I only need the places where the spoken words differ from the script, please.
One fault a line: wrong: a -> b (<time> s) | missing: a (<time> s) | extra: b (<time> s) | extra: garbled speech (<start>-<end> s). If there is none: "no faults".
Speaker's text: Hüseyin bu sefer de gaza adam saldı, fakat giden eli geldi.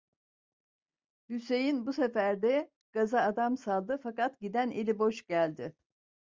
extra: boş (5.0 s)